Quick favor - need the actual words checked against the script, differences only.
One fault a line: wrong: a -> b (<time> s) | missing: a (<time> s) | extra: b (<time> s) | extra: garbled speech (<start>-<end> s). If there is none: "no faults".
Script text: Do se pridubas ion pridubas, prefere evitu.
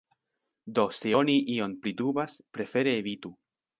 wrong: pridubas -> oni (1.2 s)